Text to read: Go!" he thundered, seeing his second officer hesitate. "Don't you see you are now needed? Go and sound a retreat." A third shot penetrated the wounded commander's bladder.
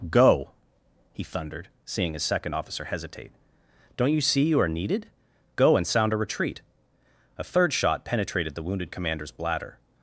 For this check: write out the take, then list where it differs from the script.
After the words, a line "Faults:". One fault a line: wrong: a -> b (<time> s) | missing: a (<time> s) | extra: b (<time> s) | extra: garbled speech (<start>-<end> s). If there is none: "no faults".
Go!" he thundered, seeing his second officer hesitate. "Don't you see you are needed? Go and sound a retreat." A third shot penetrated the wounded commander's bladder.
Faults:
missing: now (4.7 s)